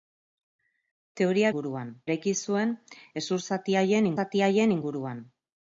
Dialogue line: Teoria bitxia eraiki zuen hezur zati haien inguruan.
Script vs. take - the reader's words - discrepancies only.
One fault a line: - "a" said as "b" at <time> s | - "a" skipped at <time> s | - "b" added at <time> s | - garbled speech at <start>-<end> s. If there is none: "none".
- "bitxia" said as "inguruan" at 1.5 s
- "zati haien" added at 4.2 s